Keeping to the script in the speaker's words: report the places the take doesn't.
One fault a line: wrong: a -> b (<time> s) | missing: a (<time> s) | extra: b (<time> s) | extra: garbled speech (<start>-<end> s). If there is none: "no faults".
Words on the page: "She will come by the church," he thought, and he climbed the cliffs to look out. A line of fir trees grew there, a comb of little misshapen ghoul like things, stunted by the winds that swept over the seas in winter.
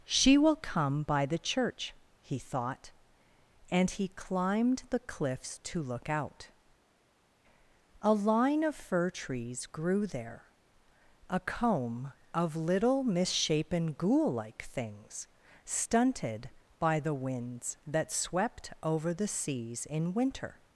no faults